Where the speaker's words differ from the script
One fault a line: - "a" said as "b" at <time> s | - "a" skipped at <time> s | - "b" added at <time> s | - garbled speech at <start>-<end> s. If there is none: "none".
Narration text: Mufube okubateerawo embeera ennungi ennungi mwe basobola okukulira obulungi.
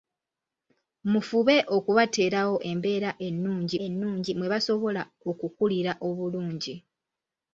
none